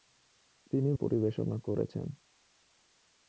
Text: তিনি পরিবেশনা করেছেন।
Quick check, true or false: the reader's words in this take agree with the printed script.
true